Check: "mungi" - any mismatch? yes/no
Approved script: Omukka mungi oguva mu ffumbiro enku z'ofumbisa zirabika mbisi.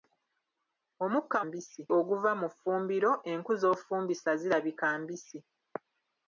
yes